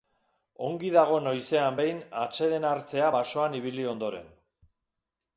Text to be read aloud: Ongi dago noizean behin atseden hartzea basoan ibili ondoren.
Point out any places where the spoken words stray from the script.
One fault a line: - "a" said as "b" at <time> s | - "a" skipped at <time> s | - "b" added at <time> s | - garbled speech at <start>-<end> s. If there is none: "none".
none